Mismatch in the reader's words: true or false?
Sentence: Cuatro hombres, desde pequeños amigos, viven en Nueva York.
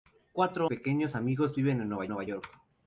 true